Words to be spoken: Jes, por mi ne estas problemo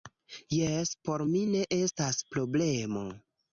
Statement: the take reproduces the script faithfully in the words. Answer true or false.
true